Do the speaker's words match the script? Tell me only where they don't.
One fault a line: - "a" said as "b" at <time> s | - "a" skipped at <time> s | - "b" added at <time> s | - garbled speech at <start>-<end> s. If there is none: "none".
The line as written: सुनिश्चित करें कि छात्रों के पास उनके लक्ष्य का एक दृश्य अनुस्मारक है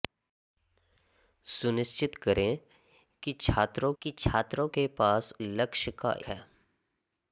- "कि छात्रों" added at 4.0 s
- "उनके" skipped at 5.3 s
- "एक दृश्य अनुस्मारक" skipped at 6.1 s